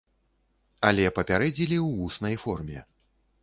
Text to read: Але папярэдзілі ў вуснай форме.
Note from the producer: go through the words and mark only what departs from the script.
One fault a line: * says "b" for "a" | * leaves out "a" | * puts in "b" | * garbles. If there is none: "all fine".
all fine